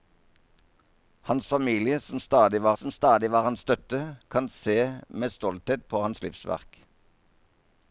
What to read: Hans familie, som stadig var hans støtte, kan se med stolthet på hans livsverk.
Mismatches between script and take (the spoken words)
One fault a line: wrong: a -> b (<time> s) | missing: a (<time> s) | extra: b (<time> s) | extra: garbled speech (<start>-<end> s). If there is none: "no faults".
extra: som stadig var (2.7 s)